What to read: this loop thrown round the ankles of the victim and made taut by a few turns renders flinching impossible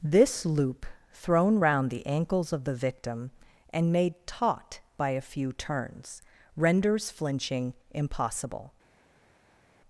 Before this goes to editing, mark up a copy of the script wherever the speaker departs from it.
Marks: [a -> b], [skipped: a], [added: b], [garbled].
this loop thrown round the ankles of the victim and made taut by a few turns renders flinching impossible